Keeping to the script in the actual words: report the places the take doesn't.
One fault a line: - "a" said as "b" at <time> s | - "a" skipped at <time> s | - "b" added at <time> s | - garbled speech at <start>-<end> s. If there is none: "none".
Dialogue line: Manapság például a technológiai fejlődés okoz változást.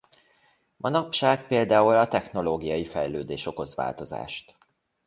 none